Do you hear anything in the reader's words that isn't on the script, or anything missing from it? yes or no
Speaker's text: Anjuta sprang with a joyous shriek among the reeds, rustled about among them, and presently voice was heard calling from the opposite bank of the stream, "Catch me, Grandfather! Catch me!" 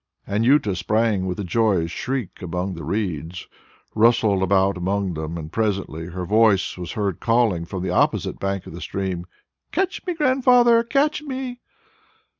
yes